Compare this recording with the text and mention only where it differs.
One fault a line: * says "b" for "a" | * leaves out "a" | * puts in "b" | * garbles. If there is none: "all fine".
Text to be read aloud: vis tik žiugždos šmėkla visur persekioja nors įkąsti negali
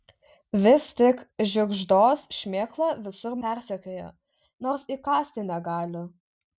all fine